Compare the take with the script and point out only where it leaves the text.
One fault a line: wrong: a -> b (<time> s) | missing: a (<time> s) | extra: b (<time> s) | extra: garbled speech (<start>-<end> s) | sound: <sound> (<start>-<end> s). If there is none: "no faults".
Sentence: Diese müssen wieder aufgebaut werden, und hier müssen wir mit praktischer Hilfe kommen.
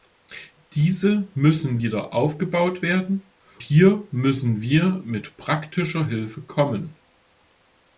missing: und (3.3 s)